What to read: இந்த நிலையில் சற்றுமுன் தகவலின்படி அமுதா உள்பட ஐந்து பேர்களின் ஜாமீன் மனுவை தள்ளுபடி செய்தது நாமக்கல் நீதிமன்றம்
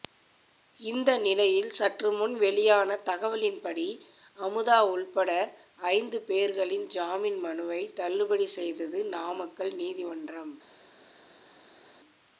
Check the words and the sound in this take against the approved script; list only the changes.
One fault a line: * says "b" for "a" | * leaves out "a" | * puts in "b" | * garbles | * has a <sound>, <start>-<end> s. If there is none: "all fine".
* puts in "வெளியான"